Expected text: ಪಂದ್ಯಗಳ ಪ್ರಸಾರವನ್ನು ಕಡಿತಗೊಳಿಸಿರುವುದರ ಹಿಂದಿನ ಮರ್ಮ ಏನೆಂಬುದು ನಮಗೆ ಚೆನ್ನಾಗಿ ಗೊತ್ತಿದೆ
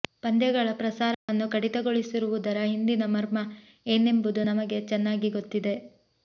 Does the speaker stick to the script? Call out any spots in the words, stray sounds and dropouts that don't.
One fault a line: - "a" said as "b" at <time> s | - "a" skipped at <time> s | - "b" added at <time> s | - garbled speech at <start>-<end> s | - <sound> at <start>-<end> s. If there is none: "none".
- dropout at 1.1-1.3 s